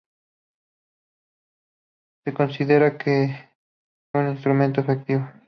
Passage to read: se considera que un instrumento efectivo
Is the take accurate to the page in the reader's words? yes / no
yes